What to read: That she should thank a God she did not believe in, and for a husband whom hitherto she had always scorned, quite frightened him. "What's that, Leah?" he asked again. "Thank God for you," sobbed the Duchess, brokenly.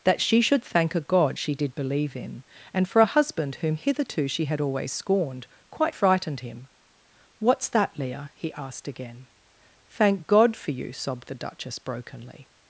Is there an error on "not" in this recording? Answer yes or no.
yes